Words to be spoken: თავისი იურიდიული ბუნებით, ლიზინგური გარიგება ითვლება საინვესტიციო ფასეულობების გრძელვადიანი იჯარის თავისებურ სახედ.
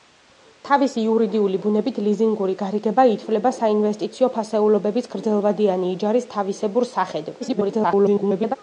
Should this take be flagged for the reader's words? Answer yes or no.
yes